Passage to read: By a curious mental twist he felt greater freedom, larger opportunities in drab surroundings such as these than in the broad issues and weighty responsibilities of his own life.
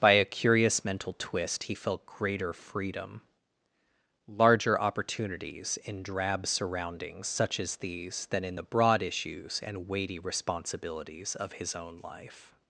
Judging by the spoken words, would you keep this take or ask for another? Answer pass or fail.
pass